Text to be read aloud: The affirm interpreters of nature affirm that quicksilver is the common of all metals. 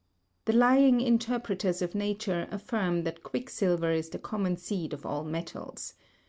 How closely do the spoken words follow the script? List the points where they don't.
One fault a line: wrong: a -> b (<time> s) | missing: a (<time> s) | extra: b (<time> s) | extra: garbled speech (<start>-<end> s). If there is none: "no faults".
wrong: affirm -> lying (0.5 s)
extra: seed (4.6 s)